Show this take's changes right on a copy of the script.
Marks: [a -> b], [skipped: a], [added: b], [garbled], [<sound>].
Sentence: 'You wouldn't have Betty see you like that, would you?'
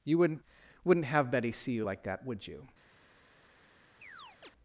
'You wouldn't [added: wouldn't] have Betty see you like that, would you?' [chirp]